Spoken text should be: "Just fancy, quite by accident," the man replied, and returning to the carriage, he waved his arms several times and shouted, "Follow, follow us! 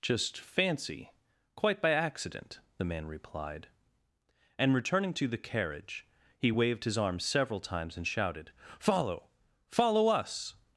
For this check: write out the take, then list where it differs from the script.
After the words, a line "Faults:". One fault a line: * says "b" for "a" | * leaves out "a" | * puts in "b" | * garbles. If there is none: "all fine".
"Just fancy, quite by accident," the man replied, and returning to the carriage, he waved his arms several times and shouted, "Follow, follow us!
Faults:
all fine